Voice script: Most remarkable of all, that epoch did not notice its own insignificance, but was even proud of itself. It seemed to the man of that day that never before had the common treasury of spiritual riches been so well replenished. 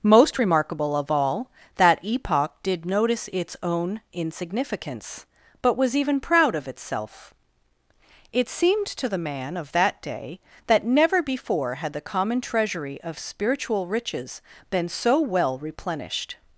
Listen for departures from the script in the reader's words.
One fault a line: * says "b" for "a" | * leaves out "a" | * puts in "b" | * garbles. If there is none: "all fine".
* leaves out "not"